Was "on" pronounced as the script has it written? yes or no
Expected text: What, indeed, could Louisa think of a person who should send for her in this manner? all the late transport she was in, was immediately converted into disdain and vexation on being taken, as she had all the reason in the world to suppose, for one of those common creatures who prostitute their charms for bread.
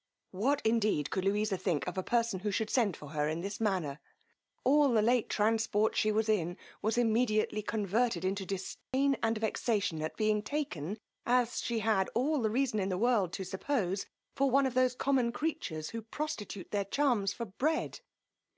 no